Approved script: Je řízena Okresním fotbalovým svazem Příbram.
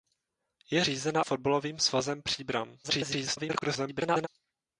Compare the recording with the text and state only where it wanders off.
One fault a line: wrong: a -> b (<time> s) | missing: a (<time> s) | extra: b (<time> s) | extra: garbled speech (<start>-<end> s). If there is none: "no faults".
missing: Okresním (1.2 s)
extra: garbled speech (2.8-4.3 s)